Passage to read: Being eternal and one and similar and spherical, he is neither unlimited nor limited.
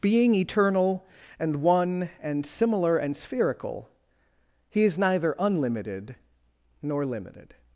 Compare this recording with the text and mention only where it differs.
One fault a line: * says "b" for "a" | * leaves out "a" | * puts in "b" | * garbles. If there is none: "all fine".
all fine